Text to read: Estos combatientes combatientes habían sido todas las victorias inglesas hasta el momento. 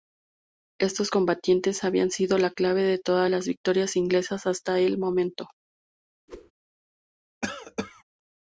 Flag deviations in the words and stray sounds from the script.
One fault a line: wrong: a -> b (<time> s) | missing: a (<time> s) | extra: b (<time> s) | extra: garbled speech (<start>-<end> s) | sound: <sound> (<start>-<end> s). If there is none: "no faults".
missing: combatientes (1.8 s)
extra: la clave de (2.4 s)
sound: whoosh (6.3-6.5 s)
sound: cough (7.4-8.0 s)